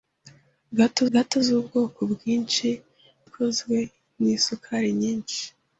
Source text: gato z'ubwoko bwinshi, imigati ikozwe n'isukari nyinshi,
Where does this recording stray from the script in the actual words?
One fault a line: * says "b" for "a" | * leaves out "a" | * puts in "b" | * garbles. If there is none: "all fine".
* puts in "gato"
* leaves out "imigati"